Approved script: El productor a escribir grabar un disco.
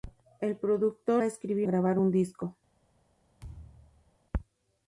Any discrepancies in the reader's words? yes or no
no